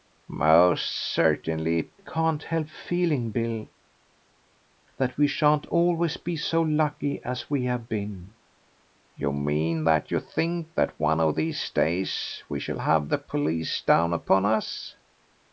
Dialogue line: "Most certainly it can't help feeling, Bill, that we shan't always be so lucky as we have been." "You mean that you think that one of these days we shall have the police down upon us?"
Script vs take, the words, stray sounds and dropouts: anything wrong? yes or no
no